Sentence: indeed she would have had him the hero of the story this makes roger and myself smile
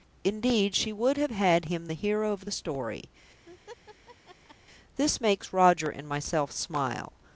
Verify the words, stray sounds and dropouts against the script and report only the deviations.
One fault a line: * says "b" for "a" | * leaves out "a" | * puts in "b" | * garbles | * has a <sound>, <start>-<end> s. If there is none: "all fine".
* has a laugh, 3.5-4.6 s